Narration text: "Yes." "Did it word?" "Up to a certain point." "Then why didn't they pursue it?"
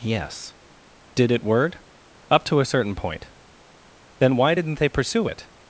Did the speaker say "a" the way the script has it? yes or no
yes